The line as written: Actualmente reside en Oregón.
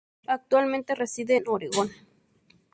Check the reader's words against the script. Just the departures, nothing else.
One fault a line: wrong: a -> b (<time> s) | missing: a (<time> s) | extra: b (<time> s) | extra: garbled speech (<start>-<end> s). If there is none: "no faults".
no faults